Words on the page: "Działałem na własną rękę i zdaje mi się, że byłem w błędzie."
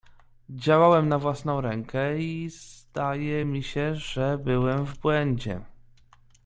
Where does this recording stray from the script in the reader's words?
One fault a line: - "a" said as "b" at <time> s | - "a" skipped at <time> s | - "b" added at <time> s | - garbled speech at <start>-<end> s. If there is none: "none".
none